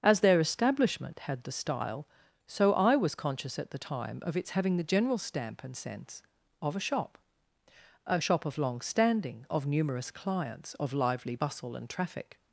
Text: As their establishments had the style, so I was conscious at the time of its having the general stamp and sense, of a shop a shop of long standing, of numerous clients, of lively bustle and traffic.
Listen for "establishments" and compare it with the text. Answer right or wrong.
wrong